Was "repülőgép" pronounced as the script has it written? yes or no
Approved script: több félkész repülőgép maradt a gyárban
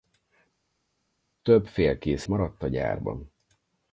no